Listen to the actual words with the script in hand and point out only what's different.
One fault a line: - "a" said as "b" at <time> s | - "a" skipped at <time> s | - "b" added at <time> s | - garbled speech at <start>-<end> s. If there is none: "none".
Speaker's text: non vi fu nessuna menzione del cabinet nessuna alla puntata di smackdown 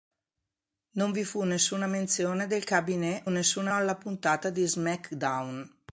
none